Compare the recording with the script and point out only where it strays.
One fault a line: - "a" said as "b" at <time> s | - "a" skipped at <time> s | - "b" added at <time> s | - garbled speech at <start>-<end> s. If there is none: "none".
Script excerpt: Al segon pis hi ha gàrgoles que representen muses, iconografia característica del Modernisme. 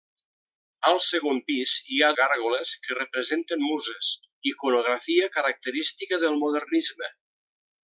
none